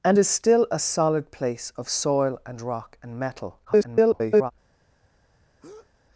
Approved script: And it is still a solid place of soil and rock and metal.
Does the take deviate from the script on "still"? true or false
false